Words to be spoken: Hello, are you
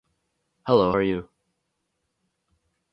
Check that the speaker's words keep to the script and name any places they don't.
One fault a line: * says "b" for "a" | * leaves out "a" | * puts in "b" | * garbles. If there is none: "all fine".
all fine